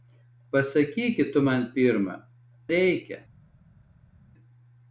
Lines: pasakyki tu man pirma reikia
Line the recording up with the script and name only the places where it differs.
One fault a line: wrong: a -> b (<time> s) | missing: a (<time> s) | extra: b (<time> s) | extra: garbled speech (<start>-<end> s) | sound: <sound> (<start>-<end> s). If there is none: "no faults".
no faults